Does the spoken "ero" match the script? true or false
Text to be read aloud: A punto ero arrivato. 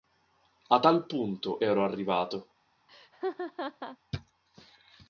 true